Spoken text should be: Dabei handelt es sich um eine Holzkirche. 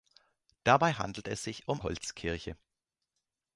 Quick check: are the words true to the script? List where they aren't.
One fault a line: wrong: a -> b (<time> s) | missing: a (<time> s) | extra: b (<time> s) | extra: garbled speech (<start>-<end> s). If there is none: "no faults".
missing: eine (1.8 s)